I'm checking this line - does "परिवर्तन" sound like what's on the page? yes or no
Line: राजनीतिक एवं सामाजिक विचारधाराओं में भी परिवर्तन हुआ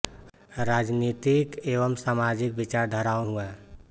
no